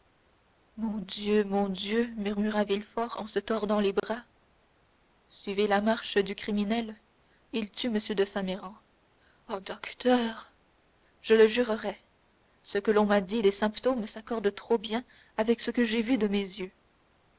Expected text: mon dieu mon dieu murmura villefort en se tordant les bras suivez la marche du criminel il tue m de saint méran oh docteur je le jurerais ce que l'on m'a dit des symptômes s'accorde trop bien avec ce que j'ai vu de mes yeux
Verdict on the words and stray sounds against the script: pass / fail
fail